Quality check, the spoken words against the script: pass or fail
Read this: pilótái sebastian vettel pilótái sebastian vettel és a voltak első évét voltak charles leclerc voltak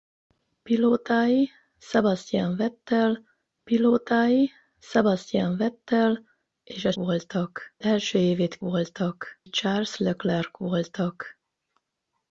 pass